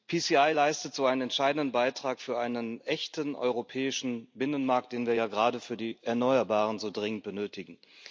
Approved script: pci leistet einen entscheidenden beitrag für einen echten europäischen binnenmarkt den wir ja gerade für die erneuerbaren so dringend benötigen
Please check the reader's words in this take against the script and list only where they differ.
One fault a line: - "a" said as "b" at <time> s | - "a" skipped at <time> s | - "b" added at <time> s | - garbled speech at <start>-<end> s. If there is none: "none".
- "so" added at 0.9 s